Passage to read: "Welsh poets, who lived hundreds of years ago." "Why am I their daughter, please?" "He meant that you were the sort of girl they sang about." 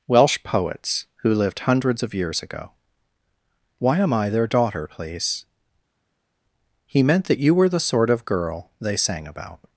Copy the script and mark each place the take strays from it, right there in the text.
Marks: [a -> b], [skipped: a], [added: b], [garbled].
"Welsh poets, who lived hundreds of years ago." "Why am I their daughter, please?" "He meant that you were the sort of girl they sang about."